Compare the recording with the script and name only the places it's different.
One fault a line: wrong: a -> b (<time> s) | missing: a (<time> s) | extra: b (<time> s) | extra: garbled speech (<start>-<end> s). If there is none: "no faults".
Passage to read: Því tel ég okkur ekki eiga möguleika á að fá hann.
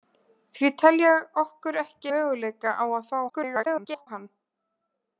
missing: eiga (2.1 s)
extra: garbled speech (3.3-4.1 s)